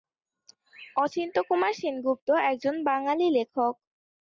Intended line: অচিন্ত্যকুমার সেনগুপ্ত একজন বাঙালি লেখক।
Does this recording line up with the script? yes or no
yes